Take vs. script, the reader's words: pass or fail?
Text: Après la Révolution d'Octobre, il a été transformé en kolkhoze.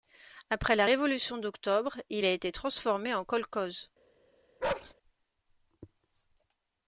pass